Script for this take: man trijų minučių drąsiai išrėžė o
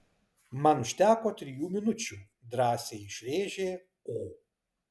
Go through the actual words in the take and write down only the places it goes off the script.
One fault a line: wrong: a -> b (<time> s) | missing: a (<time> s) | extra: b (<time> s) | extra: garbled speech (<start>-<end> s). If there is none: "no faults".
extra: užteko (0.8 s)